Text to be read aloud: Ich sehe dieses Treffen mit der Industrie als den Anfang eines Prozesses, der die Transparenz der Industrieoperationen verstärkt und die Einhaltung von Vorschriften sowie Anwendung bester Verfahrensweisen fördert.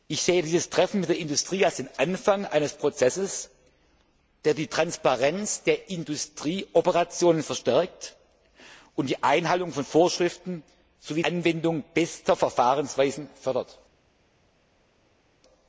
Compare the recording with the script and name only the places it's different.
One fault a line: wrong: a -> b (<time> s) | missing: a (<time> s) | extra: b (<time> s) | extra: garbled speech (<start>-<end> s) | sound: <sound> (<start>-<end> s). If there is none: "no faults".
no faults